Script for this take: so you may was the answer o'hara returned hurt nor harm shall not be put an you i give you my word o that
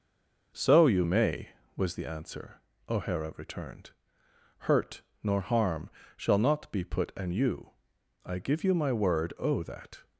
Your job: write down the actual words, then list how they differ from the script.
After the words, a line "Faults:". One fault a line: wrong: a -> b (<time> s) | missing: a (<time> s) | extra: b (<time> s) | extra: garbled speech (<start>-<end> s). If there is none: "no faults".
so you may was the answer o'hara returned hurt nor harm shall not be put an you i give you my word o that
Faults:
no faults